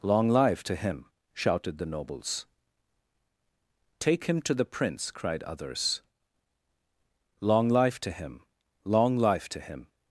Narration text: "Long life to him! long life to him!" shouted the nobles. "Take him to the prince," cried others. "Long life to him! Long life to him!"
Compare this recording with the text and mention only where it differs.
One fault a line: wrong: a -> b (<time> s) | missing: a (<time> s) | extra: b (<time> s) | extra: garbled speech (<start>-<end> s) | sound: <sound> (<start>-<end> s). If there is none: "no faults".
missing: long life to him (1.1 s)